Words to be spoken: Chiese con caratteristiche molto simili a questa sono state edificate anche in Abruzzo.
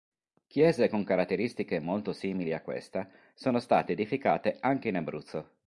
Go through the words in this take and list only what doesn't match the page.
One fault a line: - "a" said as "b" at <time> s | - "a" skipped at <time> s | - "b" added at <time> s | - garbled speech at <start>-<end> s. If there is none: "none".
none